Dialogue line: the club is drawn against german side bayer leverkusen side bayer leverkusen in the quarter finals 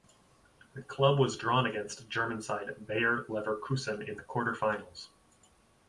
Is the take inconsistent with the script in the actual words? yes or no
yes